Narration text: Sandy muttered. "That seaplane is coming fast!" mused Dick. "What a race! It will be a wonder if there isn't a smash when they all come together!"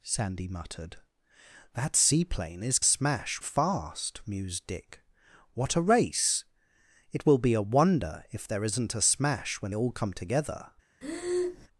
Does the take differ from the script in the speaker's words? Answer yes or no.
yes